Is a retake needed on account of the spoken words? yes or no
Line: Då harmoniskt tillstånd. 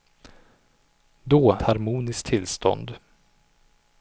no